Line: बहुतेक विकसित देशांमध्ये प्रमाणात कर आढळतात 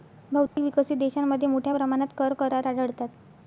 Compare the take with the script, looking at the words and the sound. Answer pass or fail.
fail